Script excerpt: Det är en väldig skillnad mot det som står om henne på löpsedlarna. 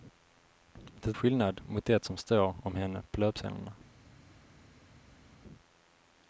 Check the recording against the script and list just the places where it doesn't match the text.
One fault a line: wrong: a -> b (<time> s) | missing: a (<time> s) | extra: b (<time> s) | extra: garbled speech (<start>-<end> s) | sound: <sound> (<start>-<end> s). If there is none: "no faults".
missing: är en väldig (1.2 s)